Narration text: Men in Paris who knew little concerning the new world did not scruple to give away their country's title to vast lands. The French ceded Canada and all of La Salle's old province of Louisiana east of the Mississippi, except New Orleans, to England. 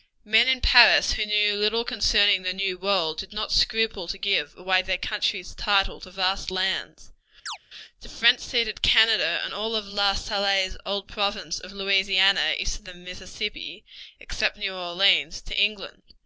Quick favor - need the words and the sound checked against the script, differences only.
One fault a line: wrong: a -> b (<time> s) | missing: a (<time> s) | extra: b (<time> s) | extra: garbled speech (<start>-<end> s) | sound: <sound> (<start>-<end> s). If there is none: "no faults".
sound: chirp (7.5-7.6 s)